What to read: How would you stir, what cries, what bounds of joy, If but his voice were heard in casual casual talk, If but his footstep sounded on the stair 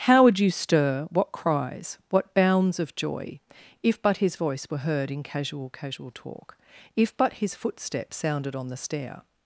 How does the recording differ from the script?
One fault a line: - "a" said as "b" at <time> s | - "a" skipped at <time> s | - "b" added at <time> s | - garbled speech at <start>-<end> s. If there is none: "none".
none